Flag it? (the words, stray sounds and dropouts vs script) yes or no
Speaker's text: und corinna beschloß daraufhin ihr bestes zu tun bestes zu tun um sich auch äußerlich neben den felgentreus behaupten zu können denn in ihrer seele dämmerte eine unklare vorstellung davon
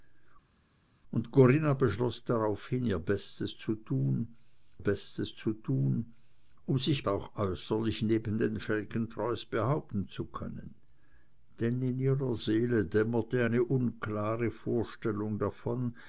no